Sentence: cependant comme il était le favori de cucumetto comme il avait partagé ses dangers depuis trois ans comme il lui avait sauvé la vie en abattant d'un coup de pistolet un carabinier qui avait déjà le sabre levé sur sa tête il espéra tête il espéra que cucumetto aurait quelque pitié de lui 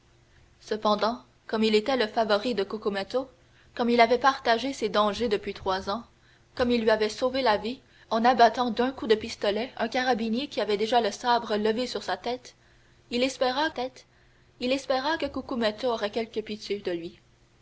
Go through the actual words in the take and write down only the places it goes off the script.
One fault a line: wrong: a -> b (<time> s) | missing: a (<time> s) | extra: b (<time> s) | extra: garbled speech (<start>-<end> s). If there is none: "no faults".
no faults